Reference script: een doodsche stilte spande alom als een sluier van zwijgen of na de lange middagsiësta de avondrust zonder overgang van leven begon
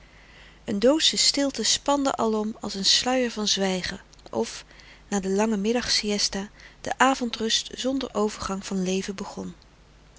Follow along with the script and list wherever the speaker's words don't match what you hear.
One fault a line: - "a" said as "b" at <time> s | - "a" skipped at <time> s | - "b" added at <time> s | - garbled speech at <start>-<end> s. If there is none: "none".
none